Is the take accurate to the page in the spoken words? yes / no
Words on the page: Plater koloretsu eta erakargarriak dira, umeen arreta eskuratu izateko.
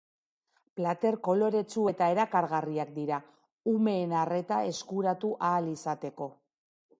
no